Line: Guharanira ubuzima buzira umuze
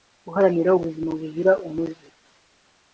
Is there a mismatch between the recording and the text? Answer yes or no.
no